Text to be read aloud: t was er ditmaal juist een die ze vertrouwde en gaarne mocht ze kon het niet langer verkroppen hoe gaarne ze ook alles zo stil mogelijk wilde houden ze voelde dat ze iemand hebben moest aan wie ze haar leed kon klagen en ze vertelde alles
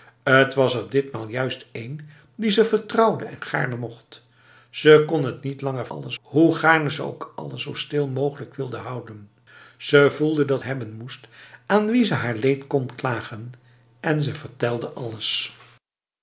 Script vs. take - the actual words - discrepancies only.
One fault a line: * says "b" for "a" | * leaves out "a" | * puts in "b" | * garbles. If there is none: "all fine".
* says "alles" for "verkroppen"
* leaves out "ze iemand"